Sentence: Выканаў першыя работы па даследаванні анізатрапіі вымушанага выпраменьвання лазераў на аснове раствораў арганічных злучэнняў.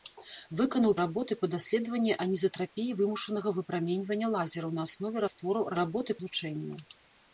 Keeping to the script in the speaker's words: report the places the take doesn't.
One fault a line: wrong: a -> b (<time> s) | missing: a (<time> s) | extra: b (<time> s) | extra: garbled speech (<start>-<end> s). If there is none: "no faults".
missing: першыя (0.9 s)
wrong: арганічных -> работы (5.8 s)